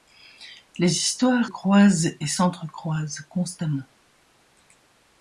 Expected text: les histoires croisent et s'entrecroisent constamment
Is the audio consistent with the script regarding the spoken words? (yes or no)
yes